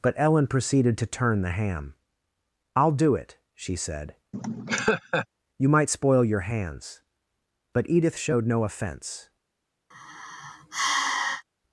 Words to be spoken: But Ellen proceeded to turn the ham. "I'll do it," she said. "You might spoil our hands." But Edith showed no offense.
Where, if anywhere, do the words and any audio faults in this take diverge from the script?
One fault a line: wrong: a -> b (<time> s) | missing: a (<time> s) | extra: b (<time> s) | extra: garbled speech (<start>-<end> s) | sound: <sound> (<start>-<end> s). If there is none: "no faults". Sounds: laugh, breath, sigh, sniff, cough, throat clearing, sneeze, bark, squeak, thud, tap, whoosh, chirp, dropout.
sound: laugh (4.3-5.3 s)
wrong: our -> your (6.2 s)
sound: sigh (9.9-11.4 s)